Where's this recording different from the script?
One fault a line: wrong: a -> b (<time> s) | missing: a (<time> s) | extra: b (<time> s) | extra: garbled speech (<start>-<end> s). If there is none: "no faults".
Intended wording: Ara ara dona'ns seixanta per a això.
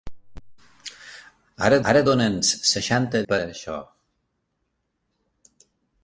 no faults